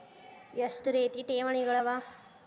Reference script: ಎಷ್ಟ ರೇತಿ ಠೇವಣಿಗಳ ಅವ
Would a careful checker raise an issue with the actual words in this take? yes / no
no